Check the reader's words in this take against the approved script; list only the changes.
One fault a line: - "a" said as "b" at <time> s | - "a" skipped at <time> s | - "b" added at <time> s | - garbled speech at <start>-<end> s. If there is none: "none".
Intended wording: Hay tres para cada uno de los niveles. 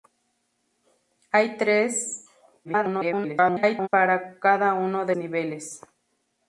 - garbled speech at 2.6-3.9 s
- "los" skipped at 5.2 s